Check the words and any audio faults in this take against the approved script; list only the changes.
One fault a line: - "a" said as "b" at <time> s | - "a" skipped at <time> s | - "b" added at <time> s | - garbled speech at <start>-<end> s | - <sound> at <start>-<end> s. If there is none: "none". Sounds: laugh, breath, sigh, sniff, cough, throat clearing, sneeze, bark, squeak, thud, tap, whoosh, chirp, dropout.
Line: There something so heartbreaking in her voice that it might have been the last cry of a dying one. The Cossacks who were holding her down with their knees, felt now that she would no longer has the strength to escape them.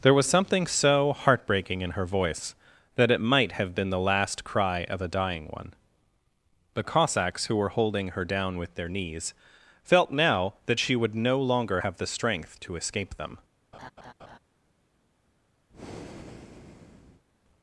- "was" added at 0.1 s
- "has" said as "have" at 11.8 s
- laugh at 13.7-14.4 s
- breath at 15.7-17.2 s